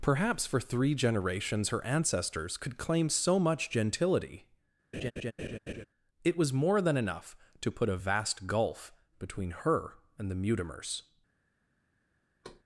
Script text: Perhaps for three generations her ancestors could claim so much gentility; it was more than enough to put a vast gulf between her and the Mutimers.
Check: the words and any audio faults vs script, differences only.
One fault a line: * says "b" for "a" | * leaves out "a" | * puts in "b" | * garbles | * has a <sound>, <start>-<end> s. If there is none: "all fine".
* has a laugh, 4.9-5.9 s
* has a thud, 12.4-12.6 s